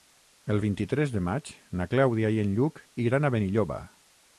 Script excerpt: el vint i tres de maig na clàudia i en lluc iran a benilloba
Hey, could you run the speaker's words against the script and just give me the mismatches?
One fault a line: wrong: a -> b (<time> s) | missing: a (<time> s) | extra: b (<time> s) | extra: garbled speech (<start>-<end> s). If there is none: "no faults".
no faults